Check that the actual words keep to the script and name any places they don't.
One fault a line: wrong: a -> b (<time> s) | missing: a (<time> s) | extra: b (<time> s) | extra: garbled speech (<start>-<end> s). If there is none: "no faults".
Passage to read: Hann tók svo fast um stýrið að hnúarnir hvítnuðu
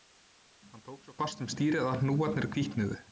no faults